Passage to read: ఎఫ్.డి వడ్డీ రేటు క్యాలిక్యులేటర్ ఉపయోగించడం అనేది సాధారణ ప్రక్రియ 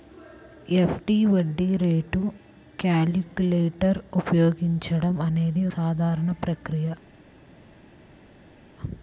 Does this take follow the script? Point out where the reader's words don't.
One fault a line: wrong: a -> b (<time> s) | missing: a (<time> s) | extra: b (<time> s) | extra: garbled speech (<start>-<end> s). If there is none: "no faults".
no faults